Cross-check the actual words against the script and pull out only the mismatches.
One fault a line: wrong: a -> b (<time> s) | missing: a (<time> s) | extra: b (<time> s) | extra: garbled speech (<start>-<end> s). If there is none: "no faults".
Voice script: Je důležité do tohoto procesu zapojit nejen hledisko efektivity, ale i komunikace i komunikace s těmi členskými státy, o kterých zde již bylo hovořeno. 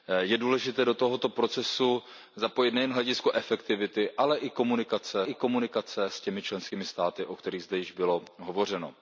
no faults